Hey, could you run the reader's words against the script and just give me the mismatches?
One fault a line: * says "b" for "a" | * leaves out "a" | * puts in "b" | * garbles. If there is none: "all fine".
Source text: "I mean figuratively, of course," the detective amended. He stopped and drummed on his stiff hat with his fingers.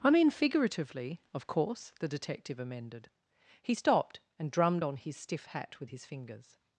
all fine